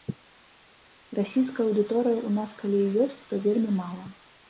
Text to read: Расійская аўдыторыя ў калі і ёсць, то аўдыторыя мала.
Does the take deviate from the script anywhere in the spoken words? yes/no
yes